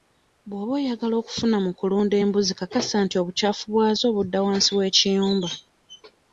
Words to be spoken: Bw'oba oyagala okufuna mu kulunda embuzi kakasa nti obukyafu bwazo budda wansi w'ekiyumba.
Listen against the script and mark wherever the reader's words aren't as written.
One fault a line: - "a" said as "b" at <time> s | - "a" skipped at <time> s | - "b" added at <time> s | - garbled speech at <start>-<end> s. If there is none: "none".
none